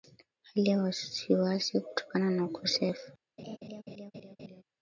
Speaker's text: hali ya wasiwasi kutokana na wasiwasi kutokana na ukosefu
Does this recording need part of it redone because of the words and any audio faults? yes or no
yes